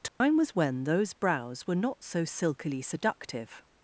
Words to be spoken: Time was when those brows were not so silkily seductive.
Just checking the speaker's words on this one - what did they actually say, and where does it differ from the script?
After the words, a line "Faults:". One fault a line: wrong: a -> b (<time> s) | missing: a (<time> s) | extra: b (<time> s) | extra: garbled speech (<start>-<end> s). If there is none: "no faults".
Time was when those brows were not so silkily seductive.
Faults:
no faults